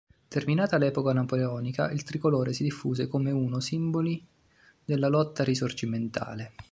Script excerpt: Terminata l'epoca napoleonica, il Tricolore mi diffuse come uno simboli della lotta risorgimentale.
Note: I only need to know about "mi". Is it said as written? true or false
false